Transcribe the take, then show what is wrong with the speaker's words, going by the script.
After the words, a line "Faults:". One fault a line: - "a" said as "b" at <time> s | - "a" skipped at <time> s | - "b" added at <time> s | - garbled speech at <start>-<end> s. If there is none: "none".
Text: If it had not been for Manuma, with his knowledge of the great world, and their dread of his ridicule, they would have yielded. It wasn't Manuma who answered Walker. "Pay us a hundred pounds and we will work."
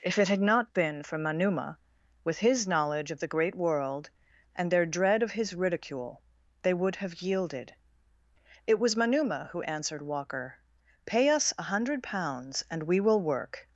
If it had not been for Manuma, with his knowledge of the great world, and their dread of his ridicule, they would have yielded. It was Manuma who answered Walker. "Pay us a hundred pounds and we will work."
Faults:
- "wasn't" said as "was" at 8.8 s